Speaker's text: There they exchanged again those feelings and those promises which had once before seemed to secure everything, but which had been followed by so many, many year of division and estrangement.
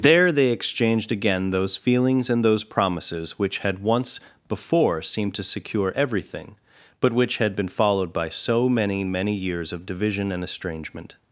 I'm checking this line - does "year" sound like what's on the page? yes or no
no